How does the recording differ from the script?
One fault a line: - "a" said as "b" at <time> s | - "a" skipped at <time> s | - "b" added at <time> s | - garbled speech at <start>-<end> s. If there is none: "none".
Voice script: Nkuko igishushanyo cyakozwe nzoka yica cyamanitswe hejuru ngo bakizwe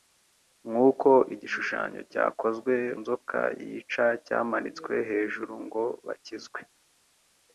none